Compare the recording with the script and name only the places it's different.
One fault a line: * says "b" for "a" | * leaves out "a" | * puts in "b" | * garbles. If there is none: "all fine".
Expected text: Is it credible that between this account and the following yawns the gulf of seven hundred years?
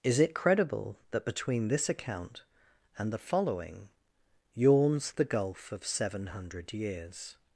all fine